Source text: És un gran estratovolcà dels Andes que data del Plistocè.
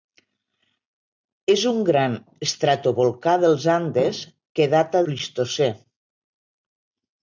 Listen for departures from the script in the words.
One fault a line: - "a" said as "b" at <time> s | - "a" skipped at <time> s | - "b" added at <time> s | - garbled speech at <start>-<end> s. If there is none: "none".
- "del" skipped at 5.0 s